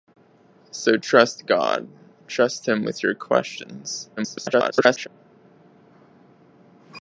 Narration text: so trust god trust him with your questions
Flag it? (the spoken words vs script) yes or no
yes